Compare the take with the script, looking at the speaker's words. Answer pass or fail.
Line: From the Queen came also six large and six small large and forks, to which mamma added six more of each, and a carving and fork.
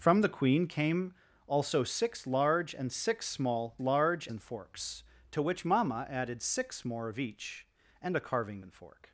pass